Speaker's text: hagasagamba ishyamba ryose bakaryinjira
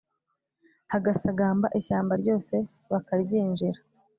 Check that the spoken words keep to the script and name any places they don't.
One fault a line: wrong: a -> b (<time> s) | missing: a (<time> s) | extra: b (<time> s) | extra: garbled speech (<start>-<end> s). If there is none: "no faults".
no faults